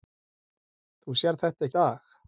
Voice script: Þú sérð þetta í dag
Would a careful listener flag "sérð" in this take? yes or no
no